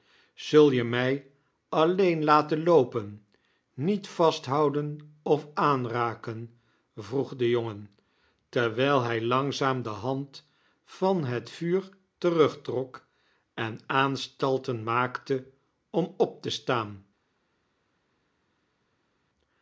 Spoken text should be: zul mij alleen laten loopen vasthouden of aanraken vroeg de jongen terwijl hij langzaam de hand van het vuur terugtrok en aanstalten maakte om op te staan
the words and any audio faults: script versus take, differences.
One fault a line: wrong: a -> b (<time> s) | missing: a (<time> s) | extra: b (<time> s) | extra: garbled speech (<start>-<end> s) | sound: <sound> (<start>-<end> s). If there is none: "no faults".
extra: je (0.7 s)
extra: niet (3.7 s)